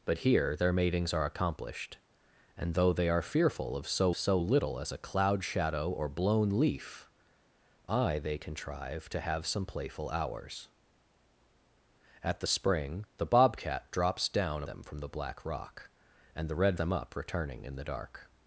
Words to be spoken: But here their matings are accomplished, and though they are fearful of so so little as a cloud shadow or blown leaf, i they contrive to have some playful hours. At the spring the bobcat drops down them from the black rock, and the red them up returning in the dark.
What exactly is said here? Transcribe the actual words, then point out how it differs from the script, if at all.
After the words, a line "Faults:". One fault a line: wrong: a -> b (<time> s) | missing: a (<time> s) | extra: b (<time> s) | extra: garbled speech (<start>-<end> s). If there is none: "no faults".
But here their matings are accomplished, and though they are fearful of so so little as a cloud shadow or blown leaf, i they contrive to have some playful hours. At the spring the bobcat drops down them from the black rock, and the red them up returning in the dark.
Faults:
no faults